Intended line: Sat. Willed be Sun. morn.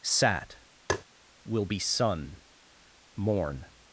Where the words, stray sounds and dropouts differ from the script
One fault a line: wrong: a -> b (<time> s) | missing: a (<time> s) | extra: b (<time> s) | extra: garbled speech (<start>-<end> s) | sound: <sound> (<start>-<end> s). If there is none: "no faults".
sound: tap (0.9-1.0 s)
wrong: Willed -> Will (1.5 s)